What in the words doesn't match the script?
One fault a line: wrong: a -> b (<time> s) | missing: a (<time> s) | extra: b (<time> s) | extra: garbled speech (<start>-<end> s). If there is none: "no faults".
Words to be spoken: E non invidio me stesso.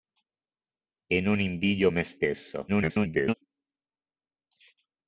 extra: garbled speech (2.7-3.3 s)